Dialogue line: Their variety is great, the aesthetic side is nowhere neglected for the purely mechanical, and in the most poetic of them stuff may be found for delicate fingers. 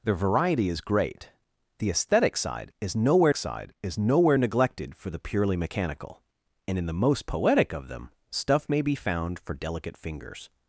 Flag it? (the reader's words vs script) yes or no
yes